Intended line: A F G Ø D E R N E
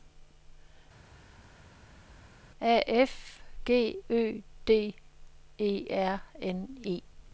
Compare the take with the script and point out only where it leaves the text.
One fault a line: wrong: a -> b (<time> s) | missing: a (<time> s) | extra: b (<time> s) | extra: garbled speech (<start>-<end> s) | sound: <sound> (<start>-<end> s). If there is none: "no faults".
no faults